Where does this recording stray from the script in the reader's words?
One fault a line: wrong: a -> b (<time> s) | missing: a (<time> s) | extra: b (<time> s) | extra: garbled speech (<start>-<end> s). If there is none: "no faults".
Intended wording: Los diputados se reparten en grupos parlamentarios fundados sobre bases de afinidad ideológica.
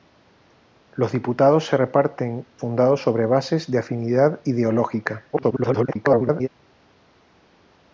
missing: en grupos parlamentarios (2.5 s)
extra: garbled speech (5.3-6.5 s)